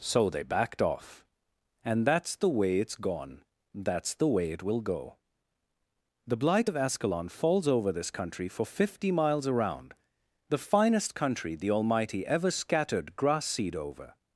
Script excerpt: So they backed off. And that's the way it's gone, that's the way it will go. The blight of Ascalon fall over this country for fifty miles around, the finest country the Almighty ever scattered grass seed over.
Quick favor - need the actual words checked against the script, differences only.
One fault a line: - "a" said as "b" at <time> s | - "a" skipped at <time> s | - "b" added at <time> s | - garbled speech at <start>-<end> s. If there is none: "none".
- "fall" said as "falls" at 7.3 s